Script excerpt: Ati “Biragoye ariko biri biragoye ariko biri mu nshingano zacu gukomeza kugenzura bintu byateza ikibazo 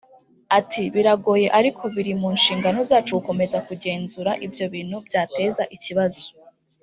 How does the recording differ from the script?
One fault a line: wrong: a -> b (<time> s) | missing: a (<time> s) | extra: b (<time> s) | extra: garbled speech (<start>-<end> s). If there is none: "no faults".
missing: biragoye ariko biri (2.1 s)
extra: ibyo (4.5 s)